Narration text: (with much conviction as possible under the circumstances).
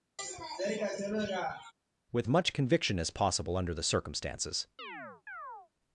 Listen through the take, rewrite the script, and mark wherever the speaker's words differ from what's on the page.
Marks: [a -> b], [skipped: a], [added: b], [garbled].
(with much conviction as possible under the circumstances).